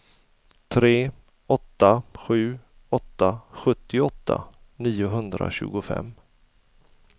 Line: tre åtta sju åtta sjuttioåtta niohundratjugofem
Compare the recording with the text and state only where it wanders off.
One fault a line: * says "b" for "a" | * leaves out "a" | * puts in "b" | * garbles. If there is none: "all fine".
all fine